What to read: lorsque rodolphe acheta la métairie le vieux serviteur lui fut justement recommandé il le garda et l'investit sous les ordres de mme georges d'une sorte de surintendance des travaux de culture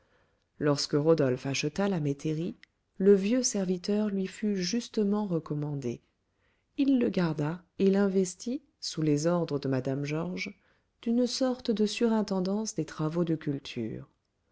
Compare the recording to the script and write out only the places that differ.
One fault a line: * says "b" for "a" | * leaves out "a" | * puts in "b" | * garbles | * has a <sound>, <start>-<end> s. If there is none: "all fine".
all fine